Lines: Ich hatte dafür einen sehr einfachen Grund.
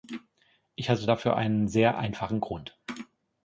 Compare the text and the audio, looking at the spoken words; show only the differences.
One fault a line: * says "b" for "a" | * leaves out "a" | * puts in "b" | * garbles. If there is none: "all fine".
all fine